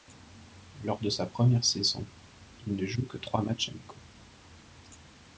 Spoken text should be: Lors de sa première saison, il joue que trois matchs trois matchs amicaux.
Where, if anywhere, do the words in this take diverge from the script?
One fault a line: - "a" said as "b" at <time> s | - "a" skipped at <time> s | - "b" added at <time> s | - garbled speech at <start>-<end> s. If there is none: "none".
- "ne" added at 2.8 s
- "trois matchs" skipped at 3.7 s